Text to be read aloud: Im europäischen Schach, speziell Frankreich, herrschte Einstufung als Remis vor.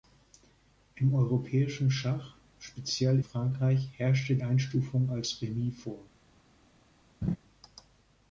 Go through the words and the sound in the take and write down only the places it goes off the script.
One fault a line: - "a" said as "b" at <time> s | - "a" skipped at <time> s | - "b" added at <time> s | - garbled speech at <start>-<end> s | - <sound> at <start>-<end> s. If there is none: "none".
- laugh at 7.2-7.4 s